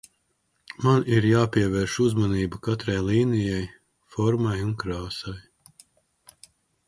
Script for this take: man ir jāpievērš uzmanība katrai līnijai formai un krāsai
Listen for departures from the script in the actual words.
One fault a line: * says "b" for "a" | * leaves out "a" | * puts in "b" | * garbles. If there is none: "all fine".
all fine